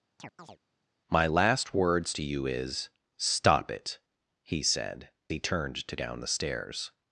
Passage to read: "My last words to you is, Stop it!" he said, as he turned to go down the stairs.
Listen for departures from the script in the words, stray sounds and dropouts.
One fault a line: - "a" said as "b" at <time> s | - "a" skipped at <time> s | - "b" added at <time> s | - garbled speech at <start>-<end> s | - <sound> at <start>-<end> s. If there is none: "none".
- chirp at 0.2-0.6 s
- "as" skipped at 5.1 s
- "go" skipped at 6.0 s